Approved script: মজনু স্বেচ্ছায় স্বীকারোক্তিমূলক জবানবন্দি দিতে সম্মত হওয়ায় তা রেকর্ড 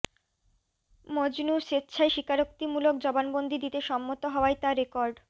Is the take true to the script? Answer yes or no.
yes